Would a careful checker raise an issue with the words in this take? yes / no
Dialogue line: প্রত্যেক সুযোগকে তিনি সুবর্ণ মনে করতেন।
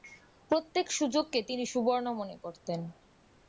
no